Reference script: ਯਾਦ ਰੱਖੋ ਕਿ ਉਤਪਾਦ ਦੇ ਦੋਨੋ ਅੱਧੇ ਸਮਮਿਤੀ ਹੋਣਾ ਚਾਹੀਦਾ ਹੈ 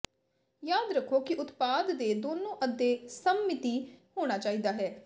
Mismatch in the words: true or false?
false